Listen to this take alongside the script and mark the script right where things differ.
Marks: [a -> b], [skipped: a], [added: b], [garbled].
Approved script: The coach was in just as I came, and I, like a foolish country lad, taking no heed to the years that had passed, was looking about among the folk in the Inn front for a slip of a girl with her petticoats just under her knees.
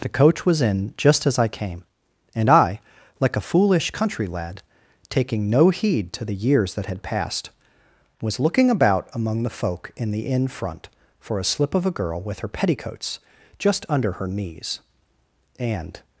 The coach was in just as I came, and I, like a foolish country lad, taking no heed to the years that had passed, was looking about among the folk in the Inn front for a slip of a girl with her petticoats just under her knees. [added: And]